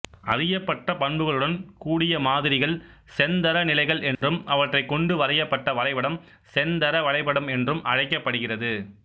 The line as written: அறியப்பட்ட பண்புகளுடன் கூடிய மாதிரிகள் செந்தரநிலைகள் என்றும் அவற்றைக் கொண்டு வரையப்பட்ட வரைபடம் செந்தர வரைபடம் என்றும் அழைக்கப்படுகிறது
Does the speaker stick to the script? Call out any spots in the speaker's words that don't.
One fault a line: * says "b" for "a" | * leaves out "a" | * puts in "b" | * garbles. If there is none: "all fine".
all fine